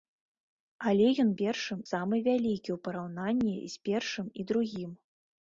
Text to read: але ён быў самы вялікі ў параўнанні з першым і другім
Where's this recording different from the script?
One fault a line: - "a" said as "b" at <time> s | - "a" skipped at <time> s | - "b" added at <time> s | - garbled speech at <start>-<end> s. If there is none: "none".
- "быў" said as "першым" at 1.4 s